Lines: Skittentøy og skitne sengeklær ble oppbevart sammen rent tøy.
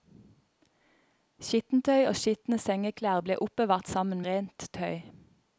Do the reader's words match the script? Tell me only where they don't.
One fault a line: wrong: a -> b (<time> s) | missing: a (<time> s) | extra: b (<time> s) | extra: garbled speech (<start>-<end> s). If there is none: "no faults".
no faults